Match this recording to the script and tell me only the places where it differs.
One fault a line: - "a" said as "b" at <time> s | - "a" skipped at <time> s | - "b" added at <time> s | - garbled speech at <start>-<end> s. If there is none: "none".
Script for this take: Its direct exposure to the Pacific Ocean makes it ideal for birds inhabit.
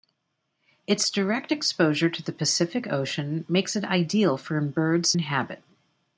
none